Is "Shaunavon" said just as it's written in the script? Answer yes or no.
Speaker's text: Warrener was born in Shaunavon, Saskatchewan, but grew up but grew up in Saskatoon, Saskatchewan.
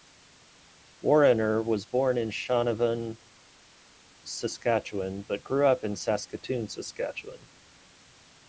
yes